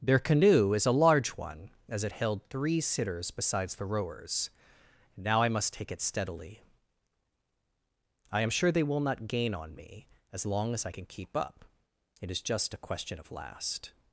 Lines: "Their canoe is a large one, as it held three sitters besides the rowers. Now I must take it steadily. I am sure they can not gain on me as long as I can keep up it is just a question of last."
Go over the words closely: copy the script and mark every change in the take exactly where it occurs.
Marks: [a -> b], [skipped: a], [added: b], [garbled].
"Their canoe is a large one, as it held three sitters besides the rowers. Now I must take it steadily. I am sure they [can -> will] not gain on me as long as I can keep up it is just a question of last."